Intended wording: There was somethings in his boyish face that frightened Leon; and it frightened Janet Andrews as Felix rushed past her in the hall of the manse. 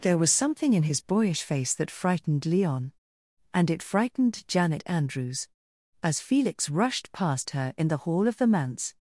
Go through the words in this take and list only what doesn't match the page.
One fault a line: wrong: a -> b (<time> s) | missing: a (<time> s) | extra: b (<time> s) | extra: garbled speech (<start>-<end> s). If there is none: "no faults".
wrong: somethings -> something (0.3 s)